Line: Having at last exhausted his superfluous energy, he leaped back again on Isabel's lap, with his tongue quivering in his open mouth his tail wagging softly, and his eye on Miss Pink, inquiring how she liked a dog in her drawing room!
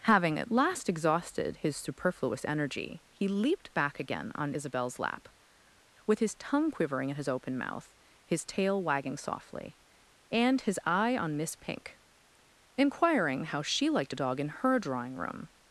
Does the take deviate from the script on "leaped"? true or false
false